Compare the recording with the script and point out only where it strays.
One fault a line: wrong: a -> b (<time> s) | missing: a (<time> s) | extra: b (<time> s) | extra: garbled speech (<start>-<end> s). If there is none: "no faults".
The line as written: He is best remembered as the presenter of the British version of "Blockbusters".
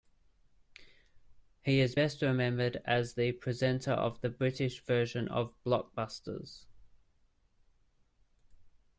no faults